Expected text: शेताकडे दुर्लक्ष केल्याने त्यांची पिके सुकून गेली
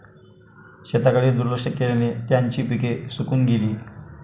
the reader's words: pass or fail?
pass